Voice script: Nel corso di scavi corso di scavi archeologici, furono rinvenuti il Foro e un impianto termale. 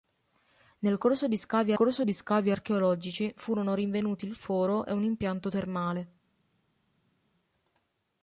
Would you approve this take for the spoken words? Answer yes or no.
yes